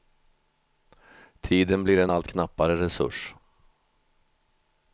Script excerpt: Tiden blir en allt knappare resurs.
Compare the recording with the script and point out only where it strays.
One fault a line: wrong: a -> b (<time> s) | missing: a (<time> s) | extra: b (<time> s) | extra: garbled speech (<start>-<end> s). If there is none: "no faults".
no faults